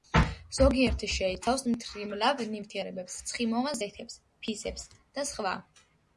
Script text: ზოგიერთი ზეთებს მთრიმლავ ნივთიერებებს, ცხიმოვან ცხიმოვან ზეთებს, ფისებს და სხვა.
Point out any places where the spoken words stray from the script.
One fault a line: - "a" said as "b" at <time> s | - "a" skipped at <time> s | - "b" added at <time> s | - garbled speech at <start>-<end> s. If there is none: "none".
- "ზეთებს" said as "შეიცავს" at 1.1 s
- "ცხიმოვან" skipped at 3.8 s